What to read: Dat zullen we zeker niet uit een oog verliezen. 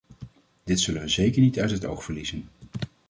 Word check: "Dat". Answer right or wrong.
wrong